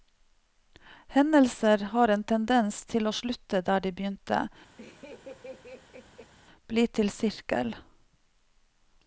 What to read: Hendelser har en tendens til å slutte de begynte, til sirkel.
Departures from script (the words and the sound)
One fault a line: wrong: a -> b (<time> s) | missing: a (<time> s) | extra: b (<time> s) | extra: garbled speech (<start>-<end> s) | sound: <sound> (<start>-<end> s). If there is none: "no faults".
extra: der (3.7 s)
sound: laugh (4.8-6.3 s)
extra: bli (6.7 s)